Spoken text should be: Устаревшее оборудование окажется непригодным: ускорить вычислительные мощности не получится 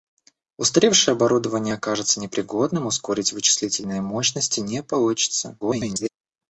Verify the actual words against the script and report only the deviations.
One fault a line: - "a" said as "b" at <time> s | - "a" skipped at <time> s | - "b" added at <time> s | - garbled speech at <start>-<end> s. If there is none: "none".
- garbled speech at 5.6-6.1 s